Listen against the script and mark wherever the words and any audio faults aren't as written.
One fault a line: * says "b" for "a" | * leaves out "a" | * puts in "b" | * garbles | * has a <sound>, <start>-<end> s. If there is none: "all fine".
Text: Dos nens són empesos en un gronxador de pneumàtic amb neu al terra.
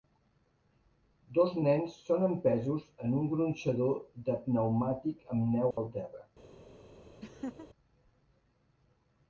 * has a dropout, 5.7-5.8 s
* has a laugh, 7.2-7.7 s